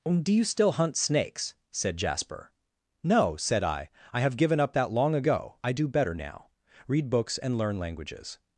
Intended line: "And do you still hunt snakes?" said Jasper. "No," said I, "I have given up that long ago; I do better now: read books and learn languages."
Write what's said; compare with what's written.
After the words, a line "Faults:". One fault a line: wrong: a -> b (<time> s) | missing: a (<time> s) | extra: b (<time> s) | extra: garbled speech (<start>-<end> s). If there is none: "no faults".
do you still hunt snakes?" said Jasper. "No," said I, "I have given up that long ago; I do better now: read books and learn languages."
Faults:
missing: And (0.2 s)